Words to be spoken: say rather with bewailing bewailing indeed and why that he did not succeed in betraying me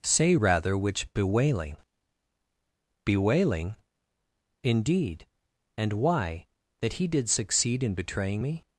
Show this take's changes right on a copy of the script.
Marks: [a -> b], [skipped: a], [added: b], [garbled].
say rather [with -> which] bewailing bewailing indeed and why that he did [skipped: not] succeed in betraying me